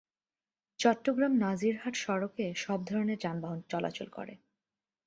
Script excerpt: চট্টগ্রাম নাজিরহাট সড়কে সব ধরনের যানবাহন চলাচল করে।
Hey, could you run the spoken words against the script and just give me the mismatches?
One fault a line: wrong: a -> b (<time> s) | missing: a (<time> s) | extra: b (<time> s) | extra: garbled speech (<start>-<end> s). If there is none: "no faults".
no faults